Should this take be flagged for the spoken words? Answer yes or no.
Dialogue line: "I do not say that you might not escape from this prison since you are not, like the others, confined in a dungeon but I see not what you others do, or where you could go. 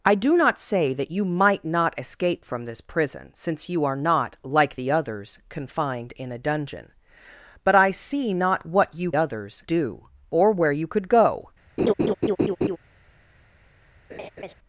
no